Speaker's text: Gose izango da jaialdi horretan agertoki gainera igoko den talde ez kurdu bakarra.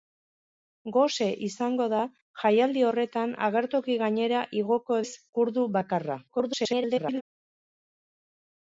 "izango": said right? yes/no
yes